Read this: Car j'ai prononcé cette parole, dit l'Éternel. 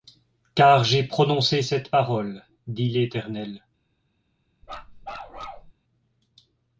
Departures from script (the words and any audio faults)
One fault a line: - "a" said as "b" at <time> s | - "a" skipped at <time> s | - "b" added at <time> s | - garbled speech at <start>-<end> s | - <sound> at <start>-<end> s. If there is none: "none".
- bark at 4.6-5.7 s